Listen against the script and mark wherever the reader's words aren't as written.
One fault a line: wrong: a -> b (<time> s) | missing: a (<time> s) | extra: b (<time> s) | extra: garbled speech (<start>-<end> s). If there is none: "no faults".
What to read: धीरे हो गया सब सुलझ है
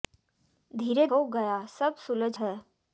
no faults